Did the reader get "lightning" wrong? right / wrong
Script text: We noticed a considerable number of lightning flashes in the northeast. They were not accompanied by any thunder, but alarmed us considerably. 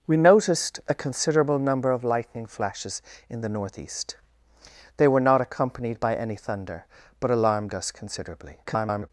right